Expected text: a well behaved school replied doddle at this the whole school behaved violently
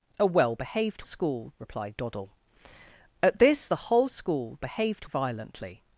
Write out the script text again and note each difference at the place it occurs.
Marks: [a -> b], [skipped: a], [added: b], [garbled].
a well behaved school replied doddle at this the whole school behaved violently